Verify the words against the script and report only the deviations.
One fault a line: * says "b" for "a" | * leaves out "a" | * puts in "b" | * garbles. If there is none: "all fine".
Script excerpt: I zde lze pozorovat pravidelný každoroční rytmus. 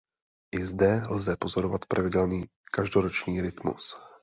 all fine